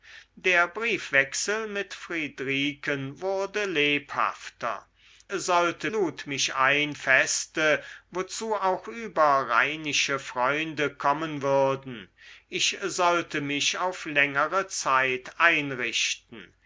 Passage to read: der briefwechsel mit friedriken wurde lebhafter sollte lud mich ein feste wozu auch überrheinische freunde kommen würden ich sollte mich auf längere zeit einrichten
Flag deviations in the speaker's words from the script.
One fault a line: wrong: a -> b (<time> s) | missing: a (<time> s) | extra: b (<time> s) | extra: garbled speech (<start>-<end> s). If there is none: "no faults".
no faults